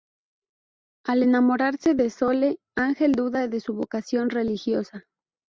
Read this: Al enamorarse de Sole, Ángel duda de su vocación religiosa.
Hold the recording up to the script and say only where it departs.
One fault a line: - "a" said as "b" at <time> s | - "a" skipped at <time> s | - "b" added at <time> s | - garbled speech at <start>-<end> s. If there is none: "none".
none